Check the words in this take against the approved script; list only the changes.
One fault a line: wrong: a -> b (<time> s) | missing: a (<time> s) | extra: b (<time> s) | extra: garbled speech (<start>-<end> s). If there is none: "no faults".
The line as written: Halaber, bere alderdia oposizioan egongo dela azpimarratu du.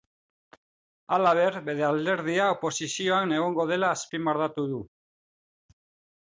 no faults